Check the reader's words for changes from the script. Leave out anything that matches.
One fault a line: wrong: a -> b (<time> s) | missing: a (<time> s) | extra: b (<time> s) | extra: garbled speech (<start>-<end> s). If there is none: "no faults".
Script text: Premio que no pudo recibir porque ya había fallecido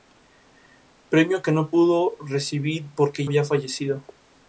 missing: ya (3.3 s)